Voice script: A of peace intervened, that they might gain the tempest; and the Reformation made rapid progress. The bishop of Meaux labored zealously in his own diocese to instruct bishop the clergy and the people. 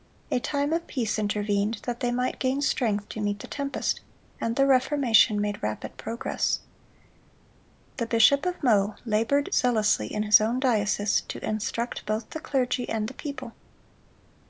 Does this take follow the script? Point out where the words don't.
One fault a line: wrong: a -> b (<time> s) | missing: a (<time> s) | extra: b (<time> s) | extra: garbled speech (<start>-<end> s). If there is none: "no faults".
extra: time (0.4 s)
extra: strength to meet (2.6 s)
wrong: bishop -> both (12.1 s)